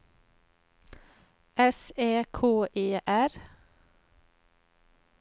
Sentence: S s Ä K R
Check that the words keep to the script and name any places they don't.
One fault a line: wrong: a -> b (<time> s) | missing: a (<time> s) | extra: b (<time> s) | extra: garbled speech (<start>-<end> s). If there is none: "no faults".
missing: s (1.8 s)
extra: E (2.7 s)